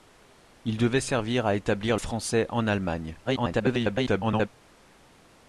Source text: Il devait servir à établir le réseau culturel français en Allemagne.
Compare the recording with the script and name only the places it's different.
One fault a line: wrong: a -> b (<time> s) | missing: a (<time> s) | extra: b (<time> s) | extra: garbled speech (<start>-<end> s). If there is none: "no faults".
missing: le réseau culturel (1.9 s)
extra: garbled speech (3.2-4.5 s)